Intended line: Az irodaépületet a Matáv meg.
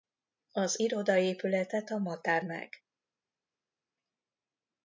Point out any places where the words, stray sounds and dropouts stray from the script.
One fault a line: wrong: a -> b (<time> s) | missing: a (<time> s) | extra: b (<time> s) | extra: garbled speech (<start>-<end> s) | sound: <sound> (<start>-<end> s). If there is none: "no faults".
no faults